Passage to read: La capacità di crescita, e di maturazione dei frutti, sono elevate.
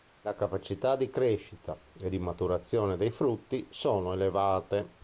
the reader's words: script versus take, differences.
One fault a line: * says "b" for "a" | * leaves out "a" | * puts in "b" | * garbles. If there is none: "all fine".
all fine